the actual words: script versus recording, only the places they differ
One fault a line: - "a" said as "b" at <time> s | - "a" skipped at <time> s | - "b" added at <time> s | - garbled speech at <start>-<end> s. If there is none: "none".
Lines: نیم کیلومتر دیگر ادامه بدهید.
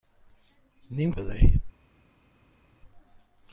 - "کیلومتر دیگر ادامه" skipped at 1.1 s